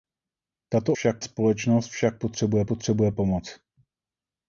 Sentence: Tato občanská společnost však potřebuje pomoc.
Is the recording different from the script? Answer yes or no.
yes